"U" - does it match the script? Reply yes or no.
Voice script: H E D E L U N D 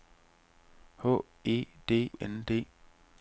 no